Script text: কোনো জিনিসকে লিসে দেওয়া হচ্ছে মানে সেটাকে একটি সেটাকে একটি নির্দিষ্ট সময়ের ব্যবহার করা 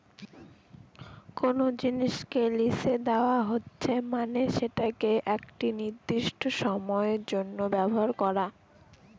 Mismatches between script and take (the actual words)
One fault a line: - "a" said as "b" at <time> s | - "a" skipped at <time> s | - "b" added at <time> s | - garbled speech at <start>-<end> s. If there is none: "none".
- "সেটাকে একটি" skipped at 5.7 s
- "জন্য" added at 7.3 s